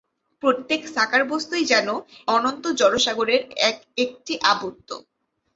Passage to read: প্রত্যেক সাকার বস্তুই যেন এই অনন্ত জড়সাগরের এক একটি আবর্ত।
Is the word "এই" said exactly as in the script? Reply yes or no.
no